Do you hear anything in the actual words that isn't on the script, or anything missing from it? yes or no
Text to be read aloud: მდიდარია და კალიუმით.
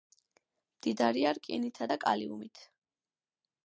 yes